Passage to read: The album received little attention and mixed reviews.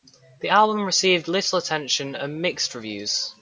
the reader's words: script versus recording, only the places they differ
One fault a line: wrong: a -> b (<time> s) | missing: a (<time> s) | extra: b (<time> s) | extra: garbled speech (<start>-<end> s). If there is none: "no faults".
no faults